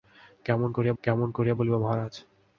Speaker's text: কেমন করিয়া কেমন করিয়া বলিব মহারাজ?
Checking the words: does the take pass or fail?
pass